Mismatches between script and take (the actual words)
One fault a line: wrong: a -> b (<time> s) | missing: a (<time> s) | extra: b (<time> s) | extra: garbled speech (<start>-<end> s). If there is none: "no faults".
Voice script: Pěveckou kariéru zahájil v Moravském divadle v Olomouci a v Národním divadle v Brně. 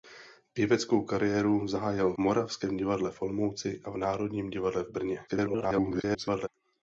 missing: v (2.1 s)
extra: garbled speech (5.3-6.5 s)